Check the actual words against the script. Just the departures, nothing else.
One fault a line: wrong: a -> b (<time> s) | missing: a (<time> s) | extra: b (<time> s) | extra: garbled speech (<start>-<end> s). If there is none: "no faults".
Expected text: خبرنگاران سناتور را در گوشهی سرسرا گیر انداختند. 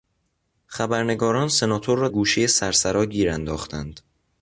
missing: در (2.1 s)